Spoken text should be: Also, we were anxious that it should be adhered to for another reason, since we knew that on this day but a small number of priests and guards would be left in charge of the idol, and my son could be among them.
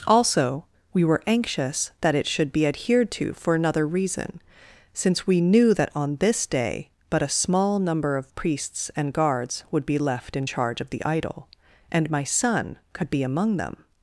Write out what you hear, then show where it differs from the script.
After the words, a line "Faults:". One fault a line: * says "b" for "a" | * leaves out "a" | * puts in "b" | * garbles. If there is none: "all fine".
Also, we were anxious that it should be adhered to for another reason, since we knew that on this day but a small number of priests and guards would be left in charge of the idol, and my son could be among them.
Faults:
all fine